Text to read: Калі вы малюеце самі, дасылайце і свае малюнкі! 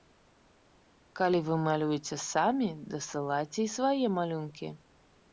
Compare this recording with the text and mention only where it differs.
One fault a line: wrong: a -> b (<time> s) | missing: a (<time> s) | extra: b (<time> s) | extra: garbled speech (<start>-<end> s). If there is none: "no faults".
no faults